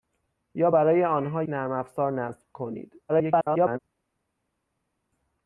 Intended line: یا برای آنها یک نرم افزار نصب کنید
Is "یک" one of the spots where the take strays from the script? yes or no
yes